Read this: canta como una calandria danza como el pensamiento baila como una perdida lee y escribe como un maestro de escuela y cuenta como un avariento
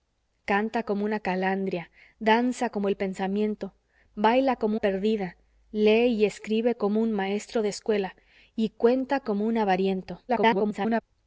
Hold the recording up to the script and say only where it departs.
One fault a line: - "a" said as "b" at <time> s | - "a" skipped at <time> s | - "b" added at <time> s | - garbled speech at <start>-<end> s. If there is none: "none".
- "una" skipped at 4.8 s
- garbled speech at 10.3-11.0 s